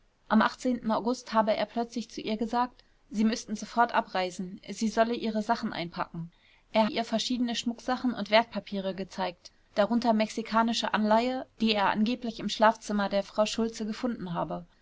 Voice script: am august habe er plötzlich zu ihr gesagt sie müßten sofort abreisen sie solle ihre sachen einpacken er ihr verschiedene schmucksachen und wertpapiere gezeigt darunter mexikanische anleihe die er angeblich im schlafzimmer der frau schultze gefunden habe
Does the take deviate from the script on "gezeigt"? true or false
false